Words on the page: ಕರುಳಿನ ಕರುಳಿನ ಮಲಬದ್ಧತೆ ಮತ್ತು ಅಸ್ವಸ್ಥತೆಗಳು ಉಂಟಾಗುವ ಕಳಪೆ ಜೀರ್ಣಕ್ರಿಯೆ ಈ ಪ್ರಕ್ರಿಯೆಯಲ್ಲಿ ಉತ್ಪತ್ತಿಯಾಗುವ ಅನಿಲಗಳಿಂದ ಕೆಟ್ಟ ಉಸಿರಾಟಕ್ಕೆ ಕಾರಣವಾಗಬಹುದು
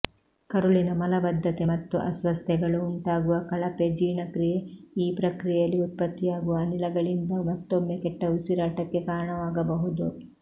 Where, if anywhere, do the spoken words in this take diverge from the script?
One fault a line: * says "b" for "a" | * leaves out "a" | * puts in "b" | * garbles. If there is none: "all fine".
* leaves out "ಕರುಳಿನ"
* puts in "ಮತ್ತೊಮ್ಮೆ"